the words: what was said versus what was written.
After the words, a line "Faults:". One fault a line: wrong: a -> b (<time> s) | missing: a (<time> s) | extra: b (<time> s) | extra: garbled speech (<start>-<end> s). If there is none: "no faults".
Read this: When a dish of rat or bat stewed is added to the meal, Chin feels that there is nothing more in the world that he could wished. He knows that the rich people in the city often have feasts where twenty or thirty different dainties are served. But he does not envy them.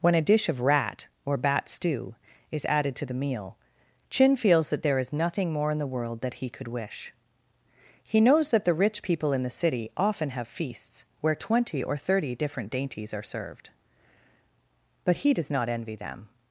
When a dish of rat or bat stew is added to the meal, Chin feels that there is nothing more in the world that he could wish. He knows that the rich people in the city often have feasts where twenty or thirty different dainties are served. But he does not envy them.
Faults:
wrong: stewed -> stew (1.7 s)
wrong: wished -> wish (6.7 s)